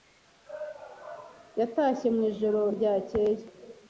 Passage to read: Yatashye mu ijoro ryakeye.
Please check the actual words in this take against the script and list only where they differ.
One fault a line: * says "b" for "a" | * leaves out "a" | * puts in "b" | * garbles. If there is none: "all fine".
all fine